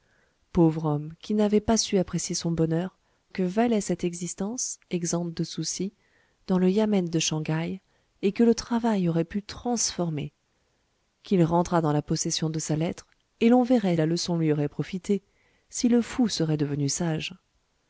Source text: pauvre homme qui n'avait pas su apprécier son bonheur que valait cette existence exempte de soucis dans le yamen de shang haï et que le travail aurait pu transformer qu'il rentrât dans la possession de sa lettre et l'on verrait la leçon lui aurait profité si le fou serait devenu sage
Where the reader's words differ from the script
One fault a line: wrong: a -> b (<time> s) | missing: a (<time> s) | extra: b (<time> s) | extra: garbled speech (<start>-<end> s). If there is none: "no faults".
no faults